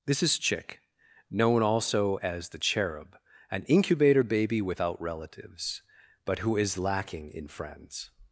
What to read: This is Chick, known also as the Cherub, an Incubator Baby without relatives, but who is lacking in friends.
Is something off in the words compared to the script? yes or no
no